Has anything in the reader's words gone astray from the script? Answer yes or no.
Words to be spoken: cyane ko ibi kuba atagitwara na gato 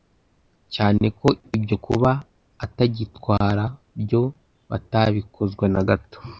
yes